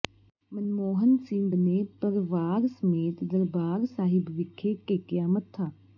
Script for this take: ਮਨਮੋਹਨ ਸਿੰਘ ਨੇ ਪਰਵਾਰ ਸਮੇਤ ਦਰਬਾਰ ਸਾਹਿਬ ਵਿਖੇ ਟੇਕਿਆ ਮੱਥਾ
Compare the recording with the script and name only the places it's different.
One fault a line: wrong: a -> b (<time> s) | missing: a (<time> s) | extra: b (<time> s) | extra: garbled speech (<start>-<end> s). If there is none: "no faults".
no faults